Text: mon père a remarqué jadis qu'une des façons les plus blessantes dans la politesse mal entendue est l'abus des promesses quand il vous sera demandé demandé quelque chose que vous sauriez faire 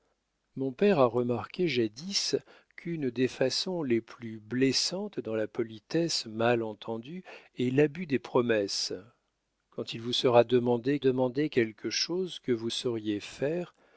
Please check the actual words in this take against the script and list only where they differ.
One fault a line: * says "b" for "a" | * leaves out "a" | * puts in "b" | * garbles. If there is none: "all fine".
all fine